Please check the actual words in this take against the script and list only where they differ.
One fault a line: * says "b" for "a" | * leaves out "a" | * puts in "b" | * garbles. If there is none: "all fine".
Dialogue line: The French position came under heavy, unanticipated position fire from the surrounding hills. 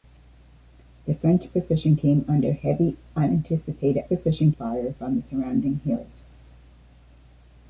all fine